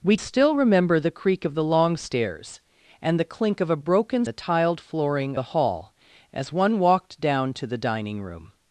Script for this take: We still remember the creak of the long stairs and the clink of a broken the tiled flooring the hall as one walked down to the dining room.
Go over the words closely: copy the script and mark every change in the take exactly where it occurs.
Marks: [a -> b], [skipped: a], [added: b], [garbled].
We still remember the creak of the long stairs and the clink of a broken the tiled flooring the hall as one walked down to the dining room.